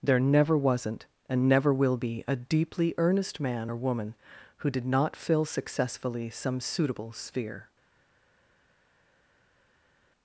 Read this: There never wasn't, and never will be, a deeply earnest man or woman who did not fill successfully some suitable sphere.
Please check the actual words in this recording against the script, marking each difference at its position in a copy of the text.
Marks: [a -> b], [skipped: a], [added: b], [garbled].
There never wasn't, and never will be, a deeply earnest man or woman who did not fill successfully some suitable sphere.